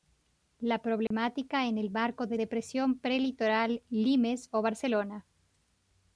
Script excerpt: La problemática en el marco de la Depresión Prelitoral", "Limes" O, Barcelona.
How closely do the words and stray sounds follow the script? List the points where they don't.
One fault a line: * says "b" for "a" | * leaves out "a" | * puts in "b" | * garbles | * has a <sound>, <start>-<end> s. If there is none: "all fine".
* has a dropout, 1.1-1.1 s
* leaves out "la"